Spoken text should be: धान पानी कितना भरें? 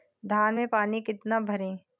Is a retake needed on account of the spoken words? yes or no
yes